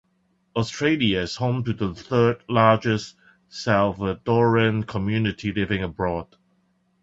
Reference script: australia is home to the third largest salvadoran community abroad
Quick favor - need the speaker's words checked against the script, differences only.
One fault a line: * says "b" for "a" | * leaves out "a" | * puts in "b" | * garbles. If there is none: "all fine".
* puts in "living"